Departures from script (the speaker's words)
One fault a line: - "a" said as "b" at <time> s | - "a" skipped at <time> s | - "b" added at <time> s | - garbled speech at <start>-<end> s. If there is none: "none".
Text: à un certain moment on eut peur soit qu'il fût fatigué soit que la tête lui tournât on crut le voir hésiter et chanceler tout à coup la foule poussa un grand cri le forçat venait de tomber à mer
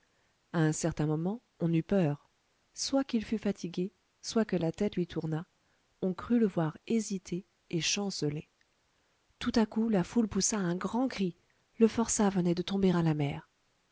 - "la" added at 13.0 s